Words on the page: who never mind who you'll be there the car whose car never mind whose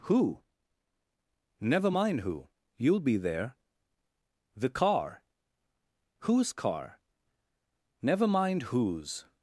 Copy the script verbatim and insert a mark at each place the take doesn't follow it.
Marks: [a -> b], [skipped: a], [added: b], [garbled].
who never mind who you'll be there the car whose car never mind whose